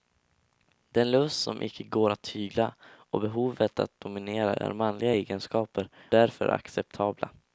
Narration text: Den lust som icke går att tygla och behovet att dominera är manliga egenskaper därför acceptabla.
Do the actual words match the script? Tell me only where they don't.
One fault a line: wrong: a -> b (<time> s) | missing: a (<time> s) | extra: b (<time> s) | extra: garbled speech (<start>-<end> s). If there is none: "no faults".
no faults